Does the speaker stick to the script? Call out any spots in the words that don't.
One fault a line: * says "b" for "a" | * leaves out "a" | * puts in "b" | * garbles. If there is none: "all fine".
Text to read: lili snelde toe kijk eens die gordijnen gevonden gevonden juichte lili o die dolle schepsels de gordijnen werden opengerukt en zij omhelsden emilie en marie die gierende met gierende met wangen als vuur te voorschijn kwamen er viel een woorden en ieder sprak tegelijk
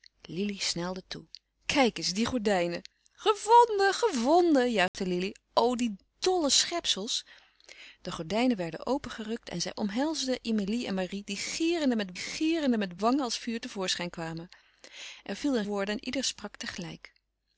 all fine